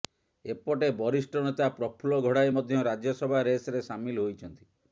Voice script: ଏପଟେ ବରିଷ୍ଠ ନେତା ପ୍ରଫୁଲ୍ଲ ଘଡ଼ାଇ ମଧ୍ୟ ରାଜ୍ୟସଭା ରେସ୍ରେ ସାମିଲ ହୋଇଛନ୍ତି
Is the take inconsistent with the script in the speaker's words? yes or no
no